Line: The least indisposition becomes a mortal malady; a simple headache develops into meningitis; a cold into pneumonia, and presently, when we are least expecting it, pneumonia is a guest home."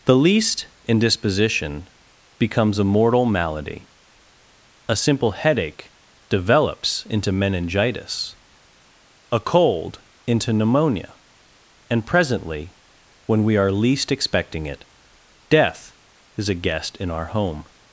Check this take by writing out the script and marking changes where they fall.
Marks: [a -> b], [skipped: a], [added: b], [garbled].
The least indisposition becomes a mortal malady; a simple headache develops into meningitis; a cold into pneumonia, and presently, when we are least expecting it, [pneumonia -> death] is a guest [added: in our] home."